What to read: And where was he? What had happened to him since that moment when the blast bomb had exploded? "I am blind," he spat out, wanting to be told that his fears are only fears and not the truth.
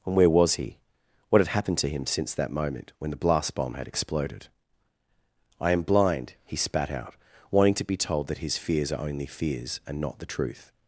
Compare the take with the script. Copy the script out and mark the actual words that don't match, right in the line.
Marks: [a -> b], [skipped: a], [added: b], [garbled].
And where was he? What had happened to him since that moment when the blast bomb had exploded? "I am blind," he spat out, wanting to be told that his fears are only fears and not the truth.